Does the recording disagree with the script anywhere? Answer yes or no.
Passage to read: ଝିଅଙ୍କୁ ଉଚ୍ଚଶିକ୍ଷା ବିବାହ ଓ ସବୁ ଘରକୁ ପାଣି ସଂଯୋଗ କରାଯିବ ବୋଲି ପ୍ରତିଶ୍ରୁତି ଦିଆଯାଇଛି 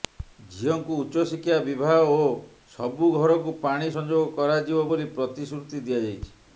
no